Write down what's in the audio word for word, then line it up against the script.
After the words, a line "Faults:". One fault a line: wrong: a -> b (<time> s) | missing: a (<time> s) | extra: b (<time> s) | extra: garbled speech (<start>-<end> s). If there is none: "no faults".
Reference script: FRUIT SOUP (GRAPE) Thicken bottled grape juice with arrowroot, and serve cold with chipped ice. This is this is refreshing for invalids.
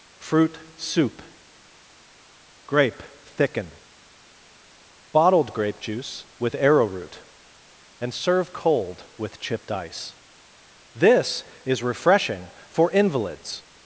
FRUIT SOUP (GRAPE) Thicken bottled grape juice with arrowroot, and serve cold with chipped ice. This is refreshing for invalids.
Faults:
missing: this is (11.8 s)